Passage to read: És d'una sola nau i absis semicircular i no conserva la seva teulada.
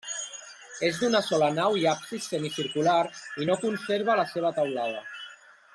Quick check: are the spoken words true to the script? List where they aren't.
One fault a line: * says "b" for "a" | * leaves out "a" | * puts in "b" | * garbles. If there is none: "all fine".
all fine